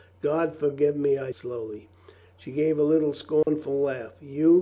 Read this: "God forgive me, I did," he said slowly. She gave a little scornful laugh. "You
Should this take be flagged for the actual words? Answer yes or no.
yes